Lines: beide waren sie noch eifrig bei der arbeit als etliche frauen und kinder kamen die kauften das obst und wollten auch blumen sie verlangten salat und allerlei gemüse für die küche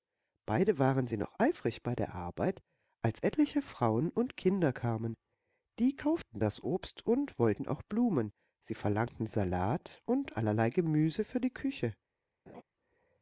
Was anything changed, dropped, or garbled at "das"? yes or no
no